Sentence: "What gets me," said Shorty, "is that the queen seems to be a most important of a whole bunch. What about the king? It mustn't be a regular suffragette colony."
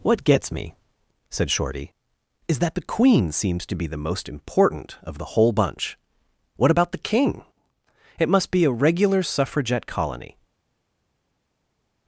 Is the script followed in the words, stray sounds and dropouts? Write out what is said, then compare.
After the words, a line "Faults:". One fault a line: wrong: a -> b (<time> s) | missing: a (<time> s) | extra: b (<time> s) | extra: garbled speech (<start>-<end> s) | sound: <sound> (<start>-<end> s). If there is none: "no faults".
"What gets me," said Shorty, "is that the queen seems to be the most important of the whole bunch. What about the king? It must be a regular suffragette colony."
Faults:
wrong: a -> the (3.9 s)
wrong: a -> the (5.2 s)
wrong: mustn't -> must (8.3 s)